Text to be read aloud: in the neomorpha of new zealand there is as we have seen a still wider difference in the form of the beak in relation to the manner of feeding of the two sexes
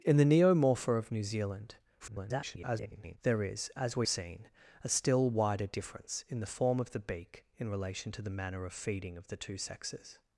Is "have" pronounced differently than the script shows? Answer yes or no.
yes